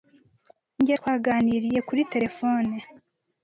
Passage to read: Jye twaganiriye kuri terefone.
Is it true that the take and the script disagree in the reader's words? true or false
false